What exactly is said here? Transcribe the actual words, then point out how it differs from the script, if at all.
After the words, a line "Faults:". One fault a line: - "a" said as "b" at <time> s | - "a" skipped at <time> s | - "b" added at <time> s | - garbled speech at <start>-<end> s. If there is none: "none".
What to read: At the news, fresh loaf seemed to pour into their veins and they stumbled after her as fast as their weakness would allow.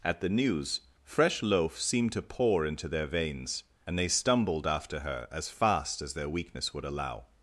At the news, fresh loaf seemed to pour into their veins and they stumbled after her as fast as their weakness would allow.
Faults:
none